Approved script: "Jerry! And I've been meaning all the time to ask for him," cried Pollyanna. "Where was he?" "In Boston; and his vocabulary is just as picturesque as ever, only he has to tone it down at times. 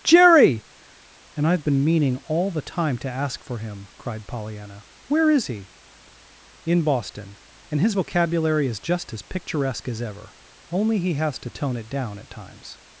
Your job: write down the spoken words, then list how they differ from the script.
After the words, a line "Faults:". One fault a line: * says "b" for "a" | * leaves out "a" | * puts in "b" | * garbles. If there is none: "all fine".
"Jerry! And I've been meaning all the time to ask for him," cried Pollyanna. "Where is he?" "In Boston; and his vocabulary is just as picturesque as ever, only he has to tone it down at times.
Faults:
* says "is" for "was"